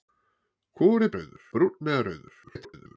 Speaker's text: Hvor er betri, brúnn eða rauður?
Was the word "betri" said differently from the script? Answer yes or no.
yes